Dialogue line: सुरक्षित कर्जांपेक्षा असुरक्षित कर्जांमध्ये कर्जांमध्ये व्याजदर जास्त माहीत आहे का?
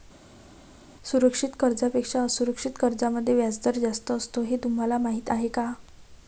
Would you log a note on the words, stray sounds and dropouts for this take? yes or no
yes